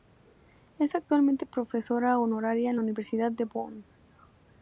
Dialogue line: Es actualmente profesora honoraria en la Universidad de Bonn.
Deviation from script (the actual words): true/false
false